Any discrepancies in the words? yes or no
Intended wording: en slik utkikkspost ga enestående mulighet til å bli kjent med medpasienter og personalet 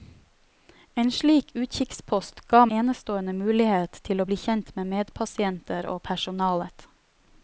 no